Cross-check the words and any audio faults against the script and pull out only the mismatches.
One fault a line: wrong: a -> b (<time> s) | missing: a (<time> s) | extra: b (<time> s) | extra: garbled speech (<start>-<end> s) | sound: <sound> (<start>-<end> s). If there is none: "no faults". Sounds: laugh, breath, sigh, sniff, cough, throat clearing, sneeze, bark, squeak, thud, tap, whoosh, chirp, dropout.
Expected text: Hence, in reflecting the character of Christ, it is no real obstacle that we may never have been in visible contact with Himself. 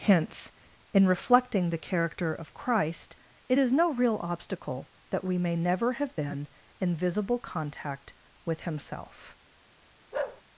sound: bark (10.1-10.4 s)